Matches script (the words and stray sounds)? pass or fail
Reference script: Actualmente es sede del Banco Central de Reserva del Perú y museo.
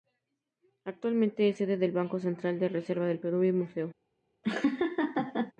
fail